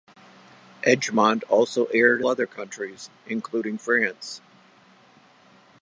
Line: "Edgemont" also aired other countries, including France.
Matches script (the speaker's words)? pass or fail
pass